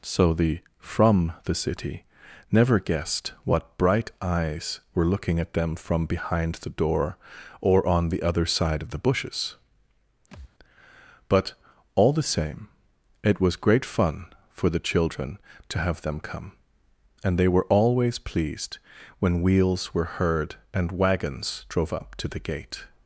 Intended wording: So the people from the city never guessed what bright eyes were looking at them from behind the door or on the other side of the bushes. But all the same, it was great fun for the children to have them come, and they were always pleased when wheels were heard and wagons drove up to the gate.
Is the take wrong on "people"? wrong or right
wrong